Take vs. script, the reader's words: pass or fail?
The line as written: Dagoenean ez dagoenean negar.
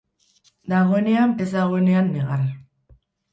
pass